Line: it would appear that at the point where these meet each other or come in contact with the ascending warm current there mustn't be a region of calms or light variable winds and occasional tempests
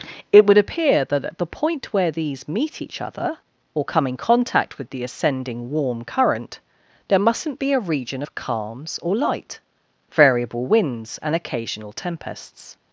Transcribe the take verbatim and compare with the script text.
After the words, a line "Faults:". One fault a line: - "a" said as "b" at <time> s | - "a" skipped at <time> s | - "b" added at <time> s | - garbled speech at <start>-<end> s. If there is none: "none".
it would appear that at the point where these meet each other or come in contact with the ascending warm current there mustn't be a region of calms or light variable winds and occasional tempests
Faults:
none